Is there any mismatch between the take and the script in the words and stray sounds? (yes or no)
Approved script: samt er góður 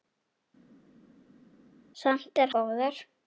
no